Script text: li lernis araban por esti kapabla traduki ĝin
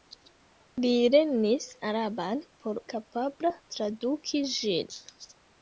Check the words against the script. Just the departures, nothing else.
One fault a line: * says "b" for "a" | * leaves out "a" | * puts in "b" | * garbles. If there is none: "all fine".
* leaves out "esti"